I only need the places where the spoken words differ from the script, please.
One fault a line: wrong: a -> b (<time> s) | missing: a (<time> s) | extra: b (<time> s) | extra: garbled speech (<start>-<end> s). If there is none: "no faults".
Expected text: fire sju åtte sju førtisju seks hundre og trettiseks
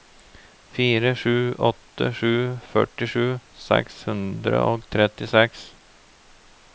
no faults